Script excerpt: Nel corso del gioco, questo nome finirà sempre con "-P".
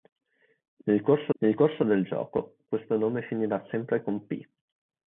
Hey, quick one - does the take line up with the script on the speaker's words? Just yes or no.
no